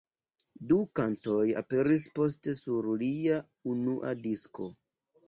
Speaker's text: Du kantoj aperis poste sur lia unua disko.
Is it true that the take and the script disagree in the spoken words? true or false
false